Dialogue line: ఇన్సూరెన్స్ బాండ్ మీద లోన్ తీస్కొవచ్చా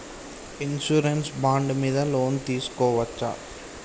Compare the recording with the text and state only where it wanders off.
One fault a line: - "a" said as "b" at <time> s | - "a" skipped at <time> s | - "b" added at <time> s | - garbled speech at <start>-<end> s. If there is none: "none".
none